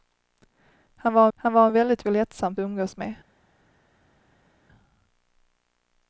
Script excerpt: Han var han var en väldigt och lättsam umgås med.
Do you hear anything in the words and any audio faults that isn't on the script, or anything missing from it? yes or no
no